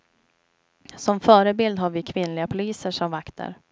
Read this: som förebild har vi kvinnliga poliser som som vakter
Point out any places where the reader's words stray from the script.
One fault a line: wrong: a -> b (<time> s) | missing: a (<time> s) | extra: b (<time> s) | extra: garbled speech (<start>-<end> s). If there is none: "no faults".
missing: som (3.1 s)